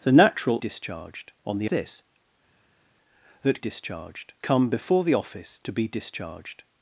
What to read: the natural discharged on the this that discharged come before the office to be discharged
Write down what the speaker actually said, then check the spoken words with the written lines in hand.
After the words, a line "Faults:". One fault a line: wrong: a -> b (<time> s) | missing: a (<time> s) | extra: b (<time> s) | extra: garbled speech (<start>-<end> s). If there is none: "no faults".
the natural discharged on the this that discharged come before the office to be discharged
Faults:
no faults